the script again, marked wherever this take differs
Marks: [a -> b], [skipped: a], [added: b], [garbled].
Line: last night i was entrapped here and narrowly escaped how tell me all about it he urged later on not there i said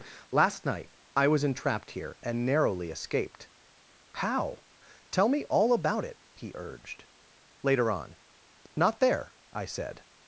last night i was entrapped here and narrowly escaped how tell me all about it he urged later on not there i said